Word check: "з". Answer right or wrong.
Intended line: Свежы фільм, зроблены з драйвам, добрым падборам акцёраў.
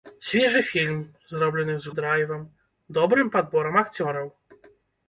right